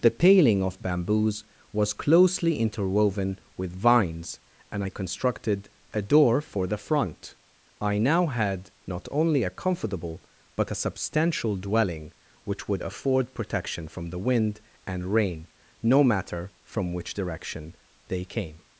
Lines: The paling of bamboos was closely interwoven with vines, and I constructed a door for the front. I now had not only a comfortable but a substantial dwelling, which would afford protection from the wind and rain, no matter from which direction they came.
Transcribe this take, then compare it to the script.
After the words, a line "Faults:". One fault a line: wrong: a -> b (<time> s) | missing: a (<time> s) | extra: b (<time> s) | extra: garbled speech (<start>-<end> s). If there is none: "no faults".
The paling of bamboos was closely interwoven with vines, and I constructed a door for the front. I now had not only a comfortable but a substantial dwelling, which would afford protection from the wind and rain, no matter from which direction they came.
Faults:
no faults